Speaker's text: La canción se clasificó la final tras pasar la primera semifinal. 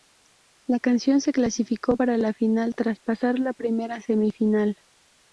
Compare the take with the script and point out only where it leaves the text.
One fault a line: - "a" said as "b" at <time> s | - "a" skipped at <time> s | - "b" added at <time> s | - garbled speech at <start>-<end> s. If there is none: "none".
- "para" added at 1.9 s